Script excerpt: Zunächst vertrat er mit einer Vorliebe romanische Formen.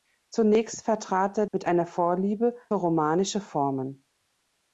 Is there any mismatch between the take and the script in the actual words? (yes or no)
no